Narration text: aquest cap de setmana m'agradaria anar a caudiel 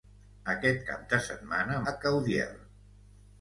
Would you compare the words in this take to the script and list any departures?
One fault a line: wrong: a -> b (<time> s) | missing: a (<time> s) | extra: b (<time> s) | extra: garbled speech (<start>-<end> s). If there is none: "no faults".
missing: m'agradaria anar (1.8 s)